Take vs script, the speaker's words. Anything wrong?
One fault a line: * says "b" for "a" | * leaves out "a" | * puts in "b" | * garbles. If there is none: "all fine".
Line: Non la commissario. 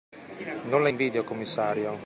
* puts in "invidio"